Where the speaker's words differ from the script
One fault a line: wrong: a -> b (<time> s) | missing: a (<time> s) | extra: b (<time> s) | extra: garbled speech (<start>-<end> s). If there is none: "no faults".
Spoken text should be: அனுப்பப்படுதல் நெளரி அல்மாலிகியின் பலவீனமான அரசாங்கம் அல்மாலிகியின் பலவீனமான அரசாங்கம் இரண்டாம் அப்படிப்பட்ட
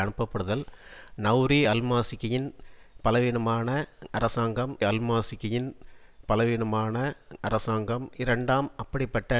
no faults